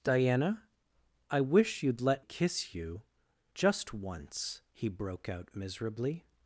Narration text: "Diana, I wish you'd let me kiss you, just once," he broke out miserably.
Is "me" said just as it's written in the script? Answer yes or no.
no